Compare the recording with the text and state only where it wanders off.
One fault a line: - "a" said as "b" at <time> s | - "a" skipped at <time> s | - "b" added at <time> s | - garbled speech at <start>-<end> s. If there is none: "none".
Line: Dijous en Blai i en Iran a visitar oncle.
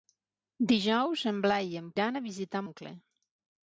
none